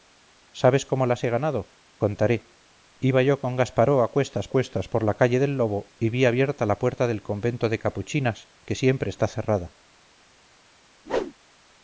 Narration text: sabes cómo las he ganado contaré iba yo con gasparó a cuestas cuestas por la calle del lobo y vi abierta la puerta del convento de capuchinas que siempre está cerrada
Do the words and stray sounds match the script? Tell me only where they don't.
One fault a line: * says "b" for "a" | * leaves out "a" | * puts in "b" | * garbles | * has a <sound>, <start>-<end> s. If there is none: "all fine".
* has a whoosh, 11.1-11.3 s